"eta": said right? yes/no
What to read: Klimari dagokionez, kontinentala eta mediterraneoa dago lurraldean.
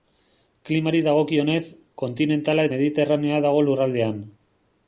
no